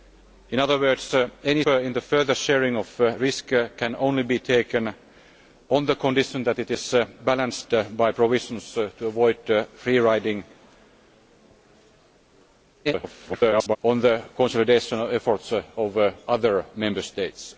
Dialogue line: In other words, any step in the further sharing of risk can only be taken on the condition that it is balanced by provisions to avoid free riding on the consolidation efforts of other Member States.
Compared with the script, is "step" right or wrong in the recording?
wrong